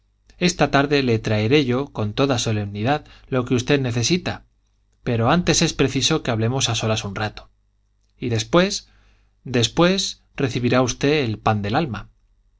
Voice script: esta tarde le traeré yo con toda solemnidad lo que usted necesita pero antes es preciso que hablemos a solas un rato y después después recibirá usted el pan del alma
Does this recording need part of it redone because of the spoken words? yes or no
no